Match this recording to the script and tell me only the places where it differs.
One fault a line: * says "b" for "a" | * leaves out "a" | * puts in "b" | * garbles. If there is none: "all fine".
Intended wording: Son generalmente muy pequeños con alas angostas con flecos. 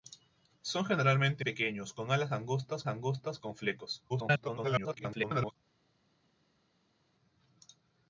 * leaves out "muy"
* puts in "angostas"
* garbles